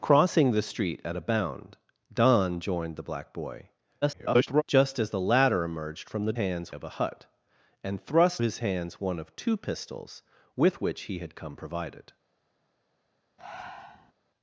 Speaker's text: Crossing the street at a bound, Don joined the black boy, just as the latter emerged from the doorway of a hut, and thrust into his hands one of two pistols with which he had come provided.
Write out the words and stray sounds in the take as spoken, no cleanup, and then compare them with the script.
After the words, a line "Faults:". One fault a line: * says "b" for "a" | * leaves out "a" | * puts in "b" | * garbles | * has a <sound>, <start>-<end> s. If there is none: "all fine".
Crossing the street at a bound, Don joined the black boy, [garbled] just as the latter emerged from the hands of a hut, and thrust his hands one of two pistols with which he had come provided.
Faults:
* garbles
* says "hands" for "doorway"
* leaves out "into"
* has a breath, 13.4-14.1 s